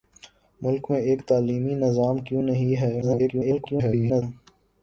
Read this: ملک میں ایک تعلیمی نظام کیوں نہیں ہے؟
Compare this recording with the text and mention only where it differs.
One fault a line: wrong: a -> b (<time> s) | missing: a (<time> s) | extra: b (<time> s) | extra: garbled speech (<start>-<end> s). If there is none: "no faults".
extra: garbled speech (3.0-4.2 s)